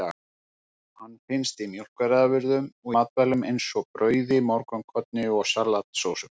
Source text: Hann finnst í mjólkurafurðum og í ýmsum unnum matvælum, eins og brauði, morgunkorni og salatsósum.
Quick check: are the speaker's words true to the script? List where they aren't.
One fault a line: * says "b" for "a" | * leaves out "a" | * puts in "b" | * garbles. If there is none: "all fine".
* leaves out "í ýmsum unnum"